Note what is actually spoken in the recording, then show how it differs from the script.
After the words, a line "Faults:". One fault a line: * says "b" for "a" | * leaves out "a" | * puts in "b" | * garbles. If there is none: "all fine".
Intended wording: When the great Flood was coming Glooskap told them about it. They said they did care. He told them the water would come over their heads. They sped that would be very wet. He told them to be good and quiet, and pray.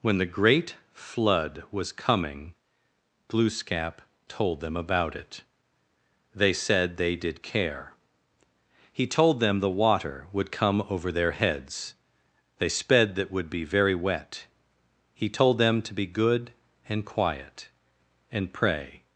When the great Flood was coming Glooskap told them about it. They said they did care. He told them the water would come over their heads. They sped that would be very wet. He told them to be good and quiet, and pray.
Faults:
all fine